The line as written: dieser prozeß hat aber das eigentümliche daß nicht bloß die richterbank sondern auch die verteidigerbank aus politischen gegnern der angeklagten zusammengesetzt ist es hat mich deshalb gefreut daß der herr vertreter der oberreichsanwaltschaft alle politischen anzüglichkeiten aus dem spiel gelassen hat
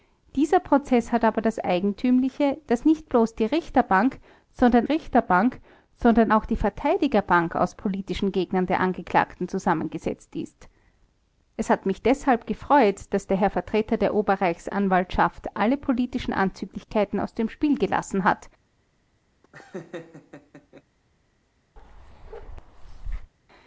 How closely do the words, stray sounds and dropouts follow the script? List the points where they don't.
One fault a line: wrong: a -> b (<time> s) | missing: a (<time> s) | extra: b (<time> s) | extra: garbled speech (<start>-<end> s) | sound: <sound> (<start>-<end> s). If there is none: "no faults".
extra: richterbank sondern (4.8 s)
sound: laugh (19.4-20.8 s)
sound: bark (21.8-23.3 s)